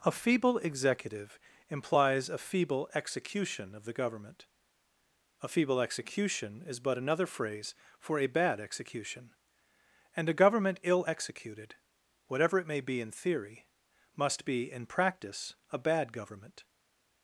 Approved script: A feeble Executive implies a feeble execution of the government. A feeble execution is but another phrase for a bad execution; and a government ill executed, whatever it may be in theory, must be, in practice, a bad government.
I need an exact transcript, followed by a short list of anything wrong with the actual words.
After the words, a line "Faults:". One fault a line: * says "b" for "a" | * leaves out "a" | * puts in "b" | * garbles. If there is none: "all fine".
A feeble Executive implies a feeble execution of the government. A feeble execution is but another phrase for a bad execution; and a government ill executed, whatever it may be in theory, must be, in practice, a bad government.
Faults:
all fine